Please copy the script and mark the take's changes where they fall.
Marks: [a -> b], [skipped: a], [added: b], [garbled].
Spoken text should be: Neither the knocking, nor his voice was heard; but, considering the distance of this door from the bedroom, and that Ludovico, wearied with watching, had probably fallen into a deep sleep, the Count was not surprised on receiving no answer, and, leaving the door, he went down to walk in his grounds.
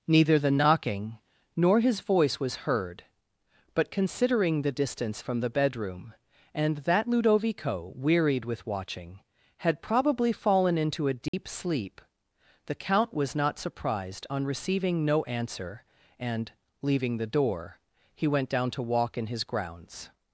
Neither the knocking, nor his voice was heard; but, considering the distance [skipped: of this door] from the bedroom, and that Ludovico, wearied with watching, had probably fallen into a deep sleep, the Count was not surprised on receiving no answer, and, leaving the door, he went down to walk in his grounds.